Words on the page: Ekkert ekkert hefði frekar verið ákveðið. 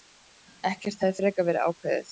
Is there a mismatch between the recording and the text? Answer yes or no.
yes